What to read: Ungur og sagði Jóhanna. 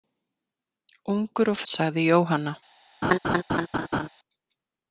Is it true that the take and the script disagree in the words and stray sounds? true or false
true